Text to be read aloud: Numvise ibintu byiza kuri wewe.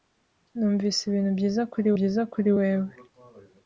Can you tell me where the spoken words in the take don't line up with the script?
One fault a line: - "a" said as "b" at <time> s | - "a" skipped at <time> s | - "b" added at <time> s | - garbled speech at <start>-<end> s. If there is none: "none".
- "byiza kuri" added at 2.0 s